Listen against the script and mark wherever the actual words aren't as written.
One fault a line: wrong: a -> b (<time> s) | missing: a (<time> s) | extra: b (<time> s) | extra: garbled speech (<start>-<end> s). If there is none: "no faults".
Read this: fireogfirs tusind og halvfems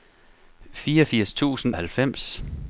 no faults